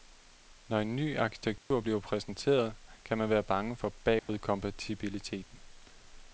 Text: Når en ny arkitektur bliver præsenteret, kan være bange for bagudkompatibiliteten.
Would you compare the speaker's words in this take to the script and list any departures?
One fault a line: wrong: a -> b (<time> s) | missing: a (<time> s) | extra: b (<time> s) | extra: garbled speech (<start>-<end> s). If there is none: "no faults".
extra: man (3.2 s)